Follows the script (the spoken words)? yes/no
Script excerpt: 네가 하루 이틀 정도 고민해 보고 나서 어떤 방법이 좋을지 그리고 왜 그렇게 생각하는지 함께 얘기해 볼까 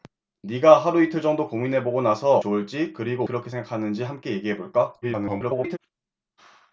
no